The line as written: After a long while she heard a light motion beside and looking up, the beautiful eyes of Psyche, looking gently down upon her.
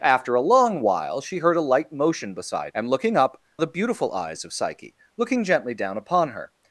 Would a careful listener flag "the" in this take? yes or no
no